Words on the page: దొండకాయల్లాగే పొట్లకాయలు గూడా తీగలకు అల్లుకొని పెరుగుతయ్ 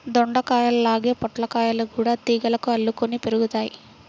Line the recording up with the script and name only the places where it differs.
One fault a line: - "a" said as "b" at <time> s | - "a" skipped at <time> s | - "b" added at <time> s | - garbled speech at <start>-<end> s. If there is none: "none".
none